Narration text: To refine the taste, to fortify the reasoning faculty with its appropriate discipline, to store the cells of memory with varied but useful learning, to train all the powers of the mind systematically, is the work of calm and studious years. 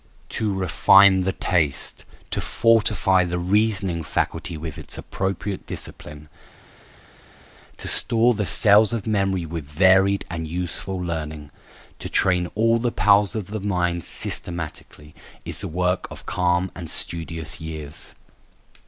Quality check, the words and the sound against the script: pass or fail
fail